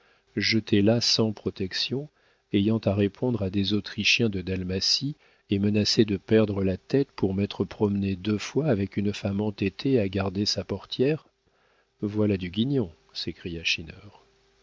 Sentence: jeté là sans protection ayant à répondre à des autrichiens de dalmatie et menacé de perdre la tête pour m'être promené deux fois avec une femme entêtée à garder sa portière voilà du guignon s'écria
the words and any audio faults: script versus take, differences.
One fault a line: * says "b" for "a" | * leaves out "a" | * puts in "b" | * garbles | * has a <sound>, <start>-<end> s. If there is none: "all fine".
all fine